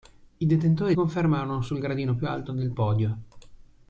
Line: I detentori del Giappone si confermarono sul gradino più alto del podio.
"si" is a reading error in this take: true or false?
true